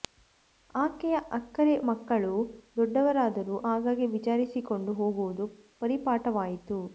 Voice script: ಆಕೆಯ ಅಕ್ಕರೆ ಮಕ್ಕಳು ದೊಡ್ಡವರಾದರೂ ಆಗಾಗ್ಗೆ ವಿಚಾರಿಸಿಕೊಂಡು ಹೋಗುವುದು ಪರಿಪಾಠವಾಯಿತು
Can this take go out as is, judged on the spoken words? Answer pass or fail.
pass